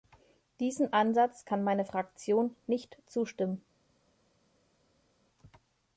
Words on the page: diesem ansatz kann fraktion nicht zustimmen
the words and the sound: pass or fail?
fail